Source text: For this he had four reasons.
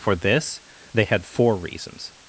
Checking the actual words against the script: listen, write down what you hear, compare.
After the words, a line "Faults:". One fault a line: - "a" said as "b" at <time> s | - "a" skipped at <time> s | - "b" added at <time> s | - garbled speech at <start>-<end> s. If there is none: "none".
For this they had four reasons.
Faults:
- "he" said as "they" at 0.9 s